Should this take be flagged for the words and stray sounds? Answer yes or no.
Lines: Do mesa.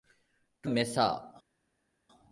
no